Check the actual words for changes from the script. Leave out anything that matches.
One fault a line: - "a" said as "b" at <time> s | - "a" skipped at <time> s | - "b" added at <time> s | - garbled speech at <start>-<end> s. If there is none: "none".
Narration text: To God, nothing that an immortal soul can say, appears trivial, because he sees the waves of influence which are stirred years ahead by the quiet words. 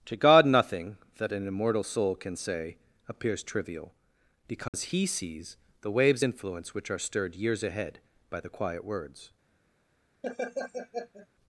- "of" skipped at 6.2 s